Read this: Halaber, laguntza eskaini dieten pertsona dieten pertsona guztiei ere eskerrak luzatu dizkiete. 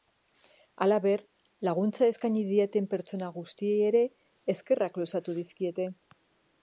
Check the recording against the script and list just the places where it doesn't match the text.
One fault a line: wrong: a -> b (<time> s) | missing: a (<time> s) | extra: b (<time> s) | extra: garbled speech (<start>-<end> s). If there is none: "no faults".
missing: dieten pertsona (3.3 s)